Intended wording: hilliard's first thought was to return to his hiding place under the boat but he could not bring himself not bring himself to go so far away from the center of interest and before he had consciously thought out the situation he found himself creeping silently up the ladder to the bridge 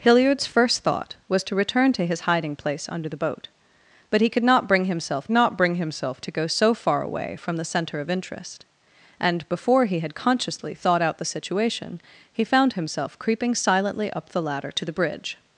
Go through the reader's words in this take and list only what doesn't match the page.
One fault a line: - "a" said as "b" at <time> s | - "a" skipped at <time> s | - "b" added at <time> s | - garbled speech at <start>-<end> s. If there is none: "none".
none